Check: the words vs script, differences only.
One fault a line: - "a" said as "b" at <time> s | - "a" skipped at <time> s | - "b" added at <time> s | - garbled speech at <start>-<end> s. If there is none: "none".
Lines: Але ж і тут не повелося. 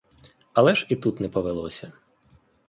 none